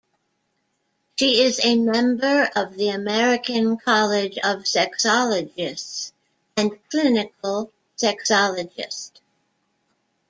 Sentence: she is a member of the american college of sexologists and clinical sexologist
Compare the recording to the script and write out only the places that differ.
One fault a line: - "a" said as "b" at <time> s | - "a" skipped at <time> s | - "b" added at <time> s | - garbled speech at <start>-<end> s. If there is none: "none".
none